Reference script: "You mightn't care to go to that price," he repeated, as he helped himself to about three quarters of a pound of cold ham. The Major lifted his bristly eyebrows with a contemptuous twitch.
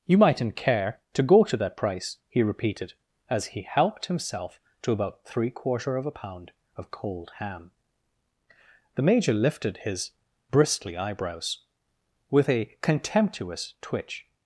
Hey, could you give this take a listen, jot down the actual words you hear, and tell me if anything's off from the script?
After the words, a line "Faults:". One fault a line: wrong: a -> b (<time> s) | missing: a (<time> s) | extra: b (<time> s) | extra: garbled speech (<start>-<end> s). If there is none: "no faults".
"You mightn't care to go to that price," he repeated, as he helped himself to about three quarter of a pound of cold ham. The Major lifted his bristly eyebrows with a contemptuous twitch.
Faults:
wrong: quarters -> quarter (5.5 s)